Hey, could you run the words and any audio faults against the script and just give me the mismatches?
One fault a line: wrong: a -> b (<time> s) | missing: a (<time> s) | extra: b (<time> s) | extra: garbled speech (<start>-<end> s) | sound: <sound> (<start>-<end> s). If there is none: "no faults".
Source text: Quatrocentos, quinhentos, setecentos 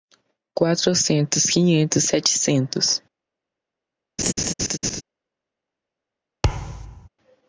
sound: laugh (4.2-5.0 s)
sound: thud (6.4-7.1 s)